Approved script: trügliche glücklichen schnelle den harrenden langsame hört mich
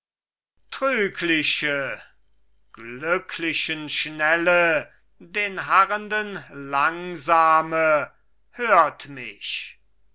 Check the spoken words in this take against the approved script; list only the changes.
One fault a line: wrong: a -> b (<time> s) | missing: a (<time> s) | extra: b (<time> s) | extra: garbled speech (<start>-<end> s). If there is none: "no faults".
no faults